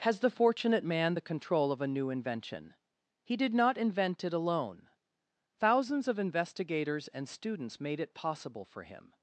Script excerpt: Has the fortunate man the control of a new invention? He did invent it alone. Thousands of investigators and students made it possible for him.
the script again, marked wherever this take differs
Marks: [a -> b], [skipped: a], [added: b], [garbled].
Has the fortunate man the control of a new invention? He did [added: not] invent it alone. Thousands of investigators and students made it possible for him.